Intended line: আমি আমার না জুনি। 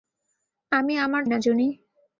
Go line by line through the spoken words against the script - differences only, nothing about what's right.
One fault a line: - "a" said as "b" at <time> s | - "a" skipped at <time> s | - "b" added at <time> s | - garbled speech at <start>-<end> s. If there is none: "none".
none